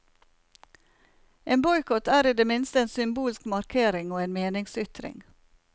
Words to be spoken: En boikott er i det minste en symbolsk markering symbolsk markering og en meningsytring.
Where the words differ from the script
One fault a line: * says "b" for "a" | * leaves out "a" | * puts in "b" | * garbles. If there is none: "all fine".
* leaves out "symbolsk markering"